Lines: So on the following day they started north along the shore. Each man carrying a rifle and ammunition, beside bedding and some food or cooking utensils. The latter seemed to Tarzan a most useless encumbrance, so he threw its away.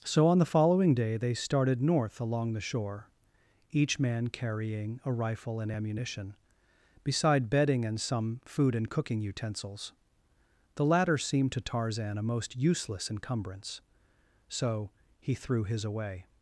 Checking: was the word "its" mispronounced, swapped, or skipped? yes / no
yes